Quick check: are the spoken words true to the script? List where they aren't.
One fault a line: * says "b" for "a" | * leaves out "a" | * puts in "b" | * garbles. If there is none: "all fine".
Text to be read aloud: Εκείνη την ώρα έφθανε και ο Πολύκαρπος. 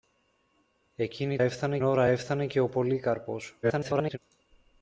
* says "έφθανε" for "την"
* garbles